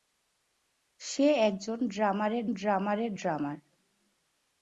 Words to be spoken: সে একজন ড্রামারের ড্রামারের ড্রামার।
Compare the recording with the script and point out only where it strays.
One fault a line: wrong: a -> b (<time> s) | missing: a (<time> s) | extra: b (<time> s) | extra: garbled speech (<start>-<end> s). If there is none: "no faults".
no faults